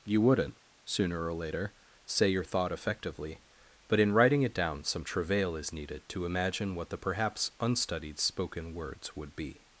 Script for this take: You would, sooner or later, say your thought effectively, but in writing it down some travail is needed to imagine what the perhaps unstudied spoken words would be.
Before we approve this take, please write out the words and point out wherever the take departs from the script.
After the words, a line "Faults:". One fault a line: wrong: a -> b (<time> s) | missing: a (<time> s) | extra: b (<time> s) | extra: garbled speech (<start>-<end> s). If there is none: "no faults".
You wouldn't, sooner or later, say your thought effectively, but in writing it down some travail is needed to imagine what the perhaps unstudied spoken words would be.
Faults:
wrong: would -> wouldn't (0.2 s)